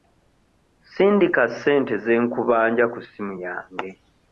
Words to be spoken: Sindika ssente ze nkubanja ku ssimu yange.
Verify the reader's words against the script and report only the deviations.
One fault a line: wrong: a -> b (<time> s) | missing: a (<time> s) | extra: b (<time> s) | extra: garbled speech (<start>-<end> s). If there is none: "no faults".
no faults